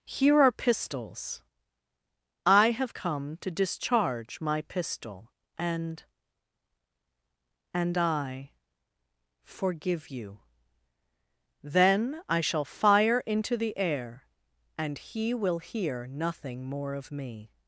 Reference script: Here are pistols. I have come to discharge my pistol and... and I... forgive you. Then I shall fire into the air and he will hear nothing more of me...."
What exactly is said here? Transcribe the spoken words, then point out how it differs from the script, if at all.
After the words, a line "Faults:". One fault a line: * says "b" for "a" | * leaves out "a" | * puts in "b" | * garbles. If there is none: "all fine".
Here are pistols. I have come to discharge my pistol and... and I... forgive you. Then I shall fire into the air and he will hear nothing more of me...."
Faults:
all fine